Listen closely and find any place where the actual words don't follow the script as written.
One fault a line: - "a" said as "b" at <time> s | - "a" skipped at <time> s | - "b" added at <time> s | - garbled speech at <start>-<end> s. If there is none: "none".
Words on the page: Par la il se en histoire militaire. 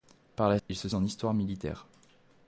none